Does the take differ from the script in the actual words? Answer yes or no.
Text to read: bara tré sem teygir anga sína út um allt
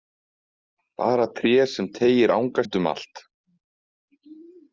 yes